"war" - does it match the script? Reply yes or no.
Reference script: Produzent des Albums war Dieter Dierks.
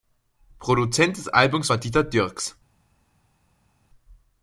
yes